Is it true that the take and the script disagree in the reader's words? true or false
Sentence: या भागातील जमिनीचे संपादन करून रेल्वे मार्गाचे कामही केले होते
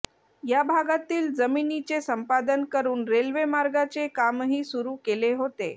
true